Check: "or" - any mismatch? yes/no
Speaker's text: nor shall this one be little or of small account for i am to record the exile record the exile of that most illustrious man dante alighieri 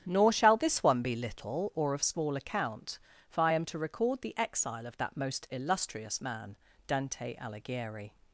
no